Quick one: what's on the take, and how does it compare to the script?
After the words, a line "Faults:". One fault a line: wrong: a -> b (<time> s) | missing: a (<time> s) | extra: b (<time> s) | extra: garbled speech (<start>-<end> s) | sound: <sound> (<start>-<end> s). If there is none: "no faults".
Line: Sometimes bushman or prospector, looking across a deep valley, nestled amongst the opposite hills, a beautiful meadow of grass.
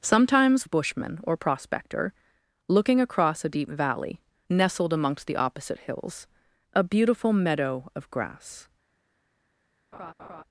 Sometimes bushman or prospector, looking across a deep valley, nestled amongst the opposite hills, a beautiful meadow of grass.
Faults:
sound: laugh (9.9-10.4 s)